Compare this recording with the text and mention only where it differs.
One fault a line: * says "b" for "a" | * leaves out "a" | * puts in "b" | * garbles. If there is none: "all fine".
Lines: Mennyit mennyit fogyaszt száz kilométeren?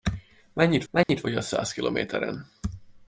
all fine